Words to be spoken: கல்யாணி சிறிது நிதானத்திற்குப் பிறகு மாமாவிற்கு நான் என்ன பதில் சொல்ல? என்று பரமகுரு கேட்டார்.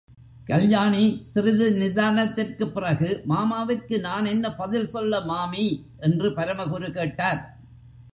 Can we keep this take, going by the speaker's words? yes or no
no